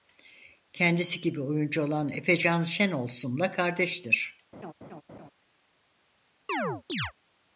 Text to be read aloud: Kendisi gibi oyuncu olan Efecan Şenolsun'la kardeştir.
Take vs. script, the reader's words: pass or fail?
pass